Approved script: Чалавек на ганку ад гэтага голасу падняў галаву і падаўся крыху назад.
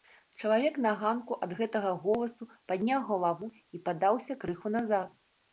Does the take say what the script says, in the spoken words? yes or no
yes